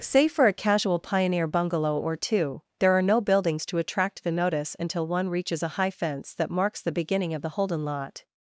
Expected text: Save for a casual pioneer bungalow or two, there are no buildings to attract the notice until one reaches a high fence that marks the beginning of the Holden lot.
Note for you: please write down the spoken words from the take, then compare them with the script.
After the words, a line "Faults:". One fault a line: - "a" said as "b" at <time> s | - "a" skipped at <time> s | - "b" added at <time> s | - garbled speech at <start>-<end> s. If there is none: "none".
Save for a casual pioneer bungalow or two, there are no buildings to attract the notice until one reaches a high fence that marks the beginning of the Holden lot.
Faults:
none